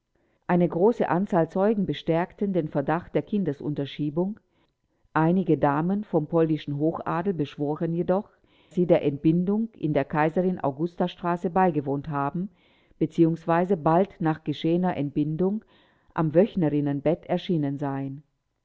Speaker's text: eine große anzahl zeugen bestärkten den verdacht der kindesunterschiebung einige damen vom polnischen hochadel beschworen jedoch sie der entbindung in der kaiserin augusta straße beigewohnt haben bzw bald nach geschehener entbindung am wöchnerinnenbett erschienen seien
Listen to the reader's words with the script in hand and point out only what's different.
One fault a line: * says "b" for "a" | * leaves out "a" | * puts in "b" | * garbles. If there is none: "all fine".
all fine